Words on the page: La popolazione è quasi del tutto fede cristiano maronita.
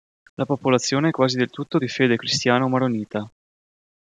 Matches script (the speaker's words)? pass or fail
fail